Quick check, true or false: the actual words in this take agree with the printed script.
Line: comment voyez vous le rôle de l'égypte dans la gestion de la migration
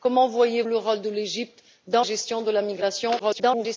false